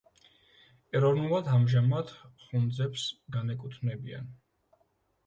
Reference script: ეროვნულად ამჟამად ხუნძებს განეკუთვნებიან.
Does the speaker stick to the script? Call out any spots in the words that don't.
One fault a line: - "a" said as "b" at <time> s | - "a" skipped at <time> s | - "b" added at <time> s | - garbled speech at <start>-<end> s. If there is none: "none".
none